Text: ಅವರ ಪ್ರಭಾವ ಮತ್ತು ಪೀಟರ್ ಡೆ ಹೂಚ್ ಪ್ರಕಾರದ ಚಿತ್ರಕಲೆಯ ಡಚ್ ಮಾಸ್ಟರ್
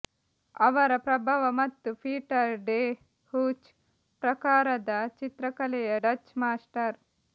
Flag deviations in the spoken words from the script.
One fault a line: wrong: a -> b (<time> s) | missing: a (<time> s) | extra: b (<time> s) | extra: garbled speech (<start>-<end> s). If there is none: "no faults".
no faults